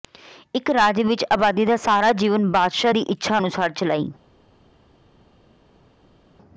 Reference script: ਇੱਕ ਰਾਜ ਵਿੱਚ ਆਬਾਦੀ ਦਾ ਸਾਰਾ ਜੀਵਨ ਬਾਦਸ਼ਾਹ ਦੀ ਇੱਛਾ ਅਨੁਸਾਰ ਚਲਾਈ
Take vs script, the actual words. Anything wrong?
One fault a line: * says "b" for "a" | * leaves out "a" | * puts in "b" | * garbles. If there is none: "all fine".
all fine